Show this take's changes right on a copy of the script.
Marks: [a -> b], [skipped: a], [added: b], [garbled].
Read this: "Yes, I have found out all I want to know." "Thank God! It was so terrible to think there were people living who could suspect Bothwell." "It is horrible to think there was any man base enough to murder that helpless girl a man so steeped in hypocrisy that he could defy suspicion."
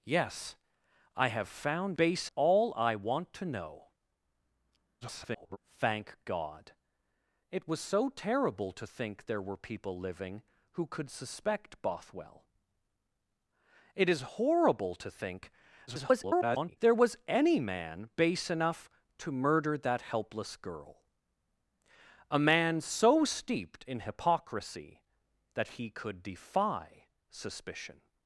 "Yes, I have found [out -> base] all I want to know." [garbled] "Thank God! It was so terrible to think there were people living who could suspect Bothwell." "It is horrible to think [garbled] there was any man base enough to murder that helpless girl a man so steeped in hypocrisy that he could defy suspicion."